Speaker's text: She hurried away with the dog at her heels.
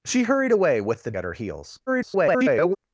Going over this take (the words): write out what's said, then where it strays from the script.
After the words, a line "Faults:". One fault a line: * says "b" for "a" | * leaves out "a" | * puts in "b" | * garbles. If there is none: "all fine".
She hurried away with the at her heels. [garbled]
Faults:
* leaves out "dog"
* garbles